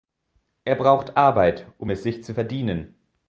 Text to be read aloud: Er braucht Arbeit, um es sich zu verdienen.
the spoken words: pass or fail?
pass